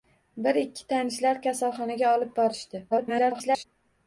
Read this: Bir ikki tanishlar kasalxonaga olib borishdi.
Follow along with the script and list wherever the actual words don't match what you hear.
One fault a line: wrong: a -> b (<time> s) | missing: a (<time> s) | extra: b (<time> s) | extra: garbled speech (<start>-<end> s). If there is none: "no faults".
extra: garbled speech (2.9-3.6 s)